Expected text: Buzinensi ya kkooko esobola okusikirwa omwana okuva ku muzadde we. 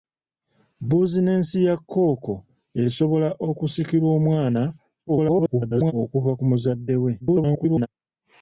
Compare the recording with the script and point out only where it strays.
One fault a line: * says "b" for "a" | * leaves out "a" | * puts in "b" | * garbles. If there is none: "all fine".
* garbles
* garbles